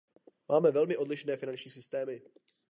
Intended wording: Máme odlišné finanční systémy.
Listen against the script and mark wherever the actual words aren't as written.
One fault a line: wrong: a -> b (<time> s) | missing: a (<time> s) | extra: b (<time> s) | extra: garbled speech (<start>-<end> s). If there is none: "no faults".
extra: velmi (0.7 s)